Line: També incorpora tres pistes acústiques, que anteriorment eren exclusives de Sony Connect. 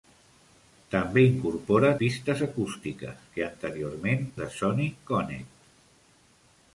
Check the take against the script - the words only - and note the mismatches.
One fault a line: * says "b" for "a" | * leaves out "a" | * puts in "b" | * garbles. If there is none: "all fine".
* leaves out "tres"
* leaves out "eren exclusives"